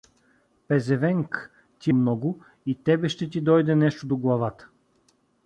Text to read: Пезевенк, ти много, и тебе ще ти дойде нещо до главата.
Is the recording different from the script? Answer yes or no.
no